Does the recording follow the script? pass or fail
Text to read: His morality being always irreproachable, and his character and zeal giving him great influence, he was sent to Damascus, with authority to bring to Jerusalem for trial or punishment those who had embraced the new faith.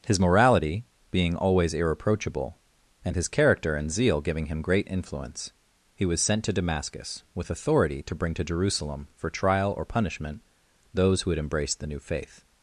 pass